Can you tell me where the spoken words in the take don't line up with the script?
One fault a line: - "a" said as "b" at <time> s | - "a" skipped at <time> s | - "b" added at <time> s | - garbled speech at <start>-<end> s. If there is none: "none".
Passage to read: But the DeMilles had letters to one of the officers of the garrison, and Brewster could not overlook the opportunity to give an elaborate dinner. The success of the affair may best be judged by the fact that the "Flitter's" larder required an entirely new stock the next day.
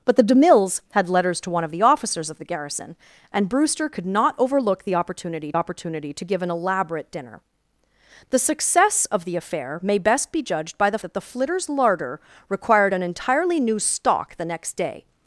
- "opportunity" added at 5.5 s
- "fact" skipped at 11.0 s